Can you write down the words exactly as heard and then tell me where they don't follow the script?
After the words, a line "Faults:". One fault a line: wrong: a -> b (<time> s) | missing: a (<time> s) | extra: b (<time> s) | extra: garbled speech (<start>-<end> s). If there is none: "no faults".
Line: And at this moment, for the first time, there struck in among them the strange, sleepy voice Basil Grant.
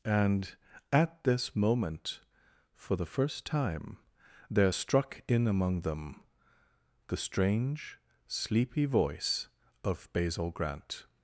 And at this moment, for the first time, there struck in among them the strange, sleepy voice of Basil Grant.
Faults:
extra: of (9.8 s)